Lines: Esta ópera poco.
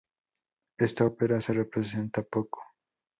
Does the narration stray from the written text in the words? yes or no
yes